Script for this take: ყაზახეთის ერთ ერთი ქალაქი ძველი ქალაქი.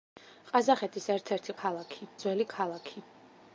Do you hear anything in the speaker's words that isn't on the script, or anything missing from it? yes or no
no